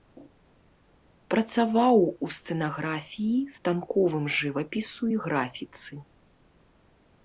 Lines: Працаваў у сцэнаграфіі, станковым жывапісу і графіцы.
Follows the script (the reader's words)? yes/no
yes